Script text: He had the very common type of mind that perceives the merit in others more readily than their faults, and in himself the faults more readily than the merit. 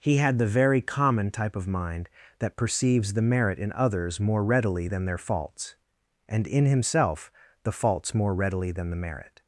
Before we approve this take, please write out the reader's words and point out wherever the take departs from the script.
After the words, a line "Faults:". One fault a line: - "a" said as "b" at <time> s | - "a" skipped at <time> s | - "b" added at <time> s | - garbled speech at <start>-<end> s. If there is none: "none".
He had the very common type of mind that perceives the merit in others more readily than their faults, and in himself the faults more readily than the merit.
Faults:
none